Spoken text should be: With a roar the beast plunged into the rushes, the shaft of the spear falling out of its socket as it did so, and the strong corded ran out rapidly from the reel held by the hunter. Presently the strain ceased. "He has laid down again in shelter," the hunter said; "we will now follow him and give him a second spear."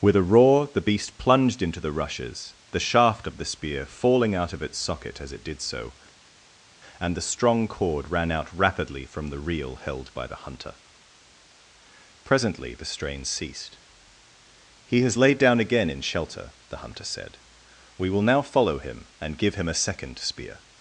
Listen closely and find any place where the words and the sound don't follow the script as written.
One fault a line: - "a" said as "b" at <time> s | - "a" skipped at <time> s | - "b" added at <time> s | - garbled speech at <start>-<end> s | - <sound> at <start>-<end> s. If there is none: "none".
- "corded" said as "cord" at 7.7 s